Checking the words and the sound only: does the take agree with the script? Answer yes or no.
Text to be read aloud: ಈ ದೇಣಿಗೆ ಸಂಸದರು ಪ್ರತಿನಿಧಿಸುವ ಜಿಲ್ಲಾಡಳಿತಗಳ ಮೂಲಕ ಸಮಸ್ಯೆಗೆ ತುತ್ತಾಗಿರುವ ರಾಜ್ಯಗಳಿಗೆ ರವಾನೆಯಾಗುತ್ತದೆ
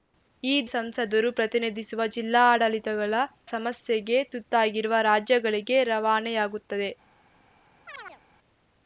no